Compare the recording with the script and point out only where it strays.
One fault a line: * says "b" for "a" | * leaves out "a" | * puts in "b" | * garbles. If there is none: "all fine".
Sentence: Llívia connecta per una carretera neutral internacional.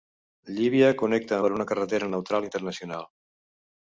all fine